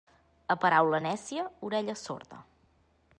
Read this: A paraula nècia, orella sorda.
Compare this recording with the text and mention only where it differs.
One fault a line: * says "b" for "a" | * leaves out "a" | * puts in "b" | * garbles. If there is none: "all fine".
all fine